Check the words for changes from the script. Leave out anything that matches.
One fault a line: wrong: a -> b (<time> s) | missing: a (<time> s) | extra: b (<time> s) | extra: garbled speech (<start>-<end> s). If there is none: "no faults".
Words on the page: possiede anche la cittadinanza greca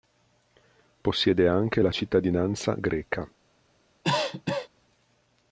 no faults